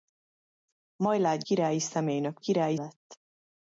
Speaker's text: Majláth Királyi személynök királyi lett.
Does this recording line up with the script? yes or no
yes